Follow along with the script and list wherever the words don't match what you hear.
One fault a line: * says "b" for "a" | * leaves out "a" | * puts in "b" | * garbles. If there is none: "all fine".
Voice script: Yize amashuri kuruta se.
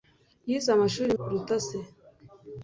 all fine